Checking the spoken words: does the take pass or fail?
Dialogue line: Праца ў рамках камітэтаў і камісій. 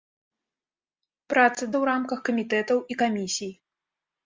pass